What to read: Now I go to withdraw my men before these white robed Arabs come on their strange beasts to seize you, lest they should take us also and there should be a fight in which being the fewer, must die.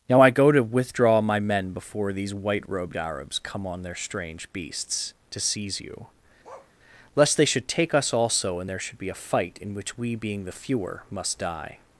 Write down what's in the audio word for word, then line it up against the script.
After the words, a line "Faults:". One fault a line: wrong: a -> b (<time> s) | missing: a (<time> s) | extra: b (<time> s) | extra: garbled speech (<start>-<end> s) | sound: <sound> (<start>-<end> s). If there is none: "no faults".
Now I go to withdraw my men before these white robed Arabs come on their strange beasts to seize you, lest they should take us also and there should be a fight in which we, being the fewer, must die.
Faults:
sound: bark (6.4-6.7 s)
extra: we (10.0 s)